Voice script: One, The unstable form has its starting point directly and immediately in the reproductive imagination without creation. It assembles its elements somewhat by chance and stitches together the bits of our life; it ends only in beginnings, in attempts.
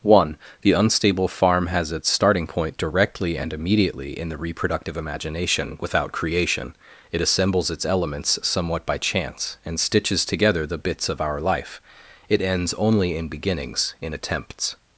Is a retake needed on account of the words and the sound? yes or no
yes